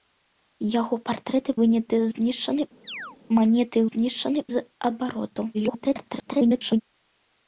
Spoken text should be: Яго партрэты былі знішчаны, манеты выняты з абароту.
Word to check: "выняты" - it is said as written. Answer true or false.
false